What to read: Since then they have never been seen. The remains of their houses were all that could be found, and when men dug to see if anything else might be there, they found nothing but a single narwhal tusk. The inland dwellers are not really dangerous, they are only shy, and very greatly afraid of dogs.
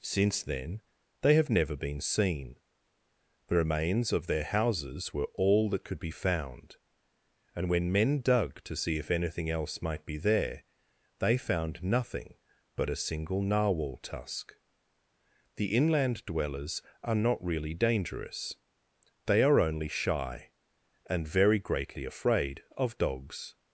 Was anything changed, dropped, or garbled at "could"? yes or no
no